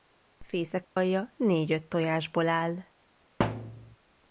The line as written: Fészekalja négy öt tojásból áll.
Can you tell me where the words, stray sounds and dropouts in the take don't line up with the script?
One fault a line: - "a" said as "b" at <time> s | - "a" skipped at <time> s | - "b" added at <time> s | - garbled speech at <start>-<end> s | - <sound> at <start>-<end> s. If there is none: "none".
- dropout at 0.8-1.0 s
- thud at 3.4-4.0 s